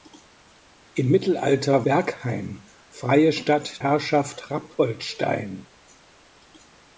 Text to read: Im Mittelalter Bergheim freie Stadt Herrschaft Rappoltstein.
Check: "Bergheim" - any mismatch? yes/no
no